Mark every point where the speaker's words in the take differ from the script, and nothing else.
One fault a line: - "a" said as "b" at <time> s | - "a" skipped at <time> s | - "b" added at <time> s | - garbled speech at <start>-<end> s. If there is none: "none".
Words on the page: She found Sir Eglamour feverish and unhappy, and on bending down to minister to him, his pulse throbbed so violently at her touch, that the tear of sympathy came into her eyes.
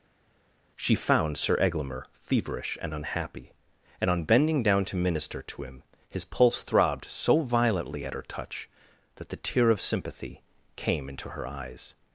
none